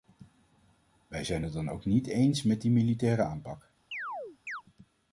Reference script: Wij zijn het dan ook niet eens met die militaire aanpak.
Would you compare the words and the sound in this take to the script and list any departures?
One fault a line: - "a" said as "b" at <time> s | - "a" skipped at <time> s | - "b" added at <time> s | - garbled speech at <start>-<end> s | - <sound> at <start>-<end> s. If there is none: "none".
- chirp at 3.9-4.6 s